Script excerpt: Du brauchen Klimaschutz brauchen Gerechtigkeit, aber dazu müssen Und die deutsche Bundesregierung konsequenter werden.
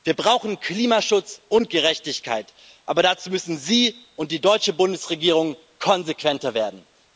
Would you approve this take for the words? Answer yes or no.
no